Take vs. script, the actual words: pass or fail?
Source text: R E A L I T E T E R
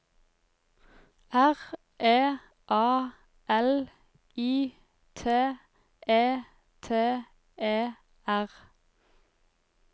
pass